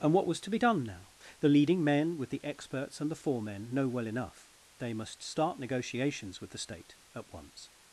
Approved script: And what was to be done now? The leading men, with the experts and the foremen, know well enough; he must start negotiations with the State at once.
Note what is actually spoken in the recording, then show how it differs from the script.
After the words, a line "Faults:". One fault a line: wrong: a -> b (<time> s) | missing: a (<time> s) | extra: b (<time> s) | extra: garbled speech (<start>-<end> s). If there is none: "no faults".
And what was to be done now? The leading men, with the experts and the foremen, know well enough; they must start negotiations with the State at once.
Faults:
wrong: he -> they (4.8 s)